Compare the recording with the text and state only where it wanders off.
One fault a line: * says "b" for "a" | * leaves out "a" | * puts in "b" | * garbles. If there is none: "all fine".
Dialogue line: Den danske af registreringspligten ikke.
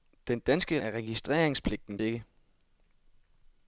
all fine